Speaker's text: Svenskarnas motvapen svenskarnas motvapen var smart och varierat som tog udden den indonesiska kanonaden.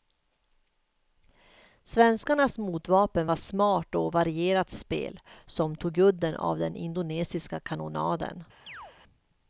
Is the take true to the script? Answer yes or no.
no